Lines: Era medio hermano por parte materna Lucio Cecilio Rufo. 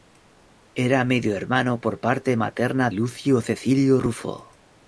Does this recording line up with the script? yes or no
yes